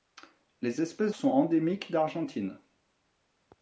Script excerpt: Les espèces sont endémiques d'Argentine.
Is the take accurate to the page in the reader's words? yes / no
yes